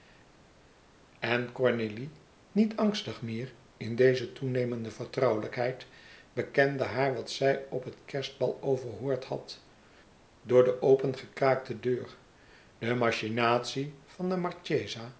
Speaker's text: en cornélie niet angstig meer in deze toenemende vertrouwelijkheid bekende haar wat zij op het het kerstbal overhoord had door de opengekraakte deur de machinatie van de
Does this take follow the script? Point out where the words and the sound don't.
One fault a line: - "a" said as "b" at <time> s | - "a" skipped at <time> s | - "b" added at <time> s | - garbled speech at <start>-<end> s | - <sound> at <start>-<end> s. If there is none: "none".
- "het" skipped at 8.0 s